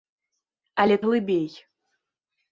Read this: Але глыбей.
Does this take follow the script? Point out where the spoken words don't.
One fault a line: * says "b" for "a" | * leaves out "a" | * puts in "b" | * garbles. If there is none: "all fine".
all fine